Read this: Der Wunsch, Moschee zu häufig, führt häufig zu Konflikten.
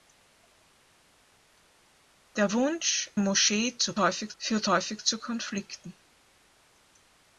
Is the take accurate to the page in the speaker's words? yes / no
yes